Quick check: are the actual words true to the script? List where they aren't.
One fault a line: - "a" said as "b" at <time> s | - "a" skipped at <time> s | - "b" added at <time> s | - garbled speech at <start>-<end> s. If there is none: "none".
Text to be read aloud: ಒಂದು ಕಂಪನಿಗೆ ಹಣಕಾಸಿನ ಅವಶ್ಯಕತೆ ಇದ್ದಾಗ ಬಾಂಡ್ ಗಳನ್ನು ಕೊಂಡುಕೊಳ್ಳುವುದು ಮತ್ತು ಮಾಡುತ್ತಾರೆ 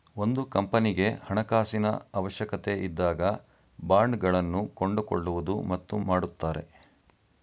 none